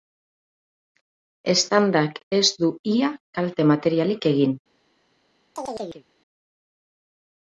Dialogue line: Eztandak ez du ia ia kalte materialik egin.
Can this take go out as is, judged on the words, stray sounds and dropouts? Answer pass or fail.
fail